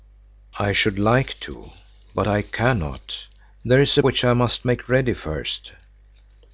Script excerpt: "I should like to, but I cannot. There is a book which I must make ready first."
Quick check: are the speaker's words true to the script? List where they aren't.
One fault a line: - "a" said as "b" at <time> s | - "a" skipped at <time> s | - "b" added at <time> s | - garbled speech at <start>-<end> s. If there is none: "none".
- "book" skipped at 4.0 s